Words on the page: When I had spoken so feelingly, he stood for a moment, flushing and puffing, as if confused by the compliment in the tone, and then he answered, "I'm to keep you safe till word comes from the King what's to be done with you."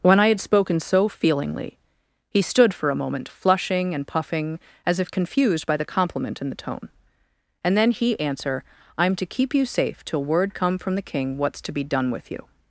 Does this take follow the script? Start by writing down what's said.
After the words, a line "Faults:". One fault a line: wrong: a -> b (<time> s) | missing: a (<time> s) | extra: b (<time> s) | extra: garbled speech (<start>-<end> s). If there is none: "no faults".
When I had spoken so feelingly, he stood for a moment, flushing and puffing, as if confused by the compliment in the tone, and then he answer, "I'm to keep you safe till word come from the King what's to be done with you."
Faults:
wrong: answered -> answer (8.2 s)
wrong: comes -> come (10.5 s)